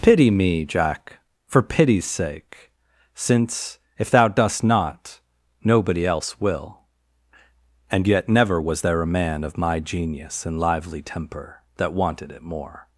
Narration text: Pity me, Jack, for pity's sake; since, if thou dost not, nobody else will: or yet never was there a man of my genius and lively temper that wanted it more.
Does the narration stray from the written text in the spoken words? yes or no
yes